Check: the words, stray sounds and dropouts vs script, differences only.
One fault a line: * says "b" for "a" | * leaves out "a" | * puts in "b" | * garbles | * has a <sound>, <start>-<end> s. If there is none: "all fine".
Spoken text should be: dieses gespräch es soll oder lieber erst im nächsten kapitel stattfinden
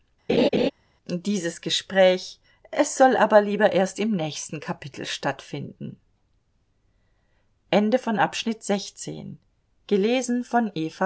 * has a laugh, 0.3-0.7 s
* says "aber" for "oder"